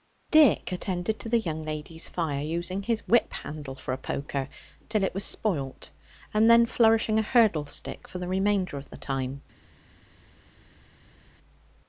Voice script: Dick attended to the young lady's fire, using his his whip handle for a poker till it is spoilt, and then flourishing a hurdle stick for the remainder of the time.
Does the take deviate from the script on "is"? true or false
true